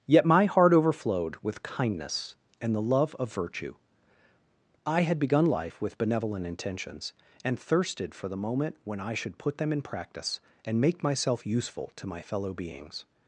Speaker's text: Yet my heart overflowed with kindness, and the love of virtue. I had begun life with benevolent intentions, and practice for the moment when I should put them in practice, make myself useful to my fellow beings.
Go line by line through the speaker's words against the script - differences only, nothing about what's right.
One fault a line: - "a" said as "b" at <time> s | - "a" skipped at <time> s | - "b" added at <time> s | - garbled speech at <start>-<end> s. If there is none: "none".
- "practice" said as "thirsted" at 7.6 s
- "and" added at 10.6 s